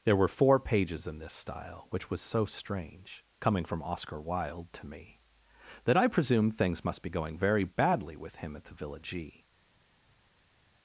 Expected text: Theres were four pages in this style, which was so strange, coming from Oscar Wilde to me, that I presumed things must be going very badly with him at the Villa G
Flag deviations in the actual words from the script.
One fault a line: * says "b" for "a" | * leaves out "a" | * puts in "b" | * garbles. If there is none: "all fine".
* says "There" for "Theres"